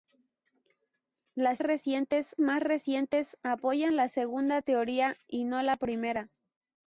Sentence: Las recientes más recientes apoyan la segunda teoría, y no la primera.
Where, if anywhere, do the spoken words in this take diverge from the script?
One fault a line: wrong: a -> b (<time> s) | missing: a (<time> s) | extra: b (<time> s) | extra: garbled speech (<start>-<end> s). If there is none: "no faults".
no faults